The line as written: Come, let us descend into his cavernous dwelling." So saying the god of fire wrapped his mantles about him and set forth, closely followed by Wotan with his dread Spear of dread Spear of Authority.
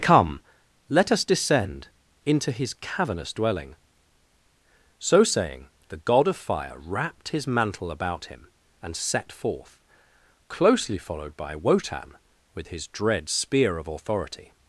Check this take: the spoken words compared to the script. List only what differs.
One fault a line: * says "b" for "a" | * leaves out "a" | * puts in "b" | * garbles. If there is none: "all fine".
* says "mantle" for "mantles"
* leaves out "dread Spear of"